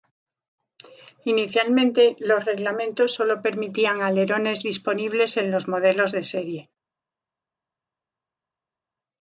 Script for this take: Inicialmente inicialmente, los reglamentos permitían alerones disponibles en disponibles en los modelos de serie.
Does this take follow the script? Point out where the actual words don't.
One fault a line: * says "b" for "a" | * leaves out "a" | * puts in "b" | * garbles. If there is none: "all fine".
* leaves out "inicialmente"
* puts in "sólo"
* leaves out "disponibles en"